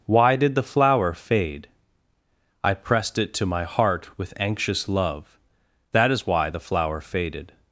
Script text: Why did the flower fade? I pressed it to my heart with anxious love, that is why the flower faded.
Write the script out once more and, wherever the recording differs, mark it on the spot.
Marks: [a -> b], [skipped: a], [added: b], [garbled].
Why did the flower fade? I pressed it to my heart with anxious love, that is why the flower faded.